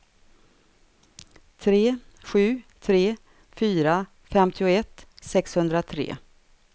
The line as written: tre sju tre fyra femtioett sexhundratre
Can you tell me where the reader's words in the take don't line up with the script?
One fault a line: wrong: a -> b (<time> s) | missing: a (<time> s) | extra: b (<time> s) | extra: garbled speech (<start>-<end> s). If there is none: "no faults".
no faults